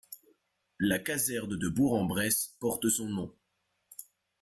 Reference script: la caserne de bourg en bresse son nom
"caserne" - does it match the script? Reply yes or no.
yes